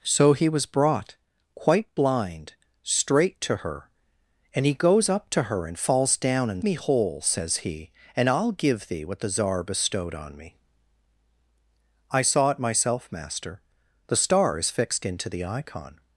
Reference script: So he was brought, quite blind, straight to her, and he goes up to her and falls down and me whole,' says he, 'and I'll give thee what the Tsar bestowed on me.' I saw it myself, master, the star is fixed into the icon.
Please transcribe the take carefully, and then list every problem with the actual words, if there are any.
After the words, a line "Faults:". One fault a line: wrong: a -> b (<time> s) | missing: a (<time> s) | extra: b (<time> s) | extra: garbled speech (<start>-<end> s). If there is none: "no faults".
So he was brought, quite blind, straight to her, and he goes up to her and falls down and me whole,' says he, 'and I'll give thee what the Tsar bestowed on me.' I saw it myself, master, the star is fixed into the icon.
Faults:
no faults